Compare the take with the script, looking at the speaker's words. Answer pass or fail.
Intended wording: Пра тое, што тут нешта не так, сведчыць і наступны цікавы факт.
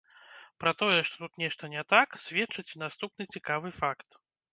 pass